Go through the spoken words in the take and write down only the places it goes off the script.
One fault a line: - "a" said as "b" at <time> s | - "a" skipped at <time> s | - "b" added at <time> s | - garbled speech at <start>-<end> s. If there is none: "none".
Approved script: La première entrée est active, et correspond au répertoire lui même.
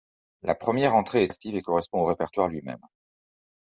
none